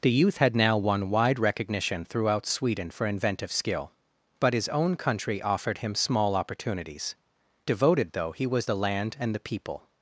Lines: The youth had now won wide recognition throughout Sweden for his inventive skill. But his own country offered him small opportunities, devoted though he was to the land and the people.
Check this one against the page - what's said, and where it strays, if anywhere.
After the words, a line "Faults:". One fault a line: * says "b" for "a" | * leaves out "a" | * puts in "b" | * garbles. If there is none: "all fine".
The youth had now won wide recognition throughout Sweden for inventive skill. But his own country offered him small opportunities, devoted though he was the land and the people.
Faults:
* leaves out "his"
* leaves out "to"